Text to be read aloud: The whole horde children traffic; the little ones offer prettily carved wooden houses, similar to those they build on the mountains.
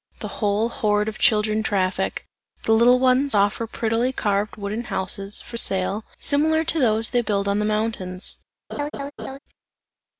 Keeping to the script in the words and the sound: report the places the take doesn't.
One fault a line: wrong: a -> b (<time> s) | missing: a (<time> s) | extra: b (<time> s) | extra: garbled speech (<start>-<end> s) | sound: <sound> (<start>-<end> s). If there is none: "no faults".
extra: of (1.1 s)
extra: for sale (5.4 s)
sound: laugh (8.7-9.4 s)